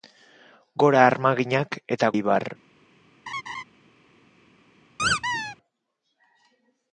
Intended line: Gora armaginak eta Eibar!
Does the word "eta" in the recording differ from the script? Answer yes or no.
no